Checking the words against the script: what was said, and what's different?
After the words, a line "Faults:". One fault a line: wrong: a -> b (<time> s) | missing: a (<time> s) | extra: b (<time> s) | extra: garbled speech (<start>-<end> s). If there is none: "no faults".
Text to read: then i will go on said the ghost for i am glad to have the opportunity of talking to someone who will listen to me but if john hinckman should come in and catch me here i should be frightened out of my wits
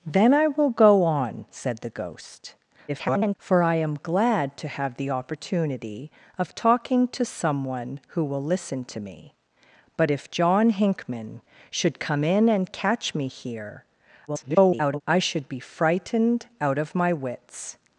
then i will go on said the ghost [garbled] for i am glad to have the opportunity of talking to someone who will listen to me but if john hinckman should come in and catch me here [garbled] i should be frightened out of my wits
Faults:
extra: garbled speech (2.9-3.4 s)
extra: garbled speech (14.3-15.0 s)